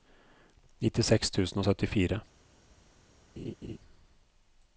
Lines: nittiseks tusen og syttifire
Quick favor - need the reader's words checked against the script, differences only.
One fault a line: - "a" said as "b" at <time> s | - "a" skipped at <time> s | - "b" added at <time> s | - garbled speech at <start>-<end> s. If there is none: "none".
none